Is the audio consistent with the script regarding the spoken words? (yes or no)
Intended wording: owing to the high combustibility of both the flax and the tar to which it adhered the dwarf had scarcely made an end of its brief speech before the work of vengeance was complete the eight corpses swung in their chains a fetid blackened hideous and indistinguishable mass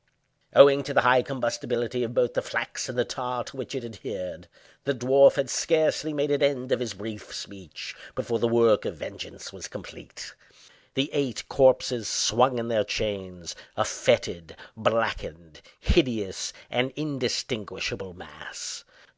no